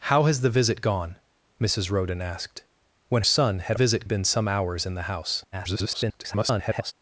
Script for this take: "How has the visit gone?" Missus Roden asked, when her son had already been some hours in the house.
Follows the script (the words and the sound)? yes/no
no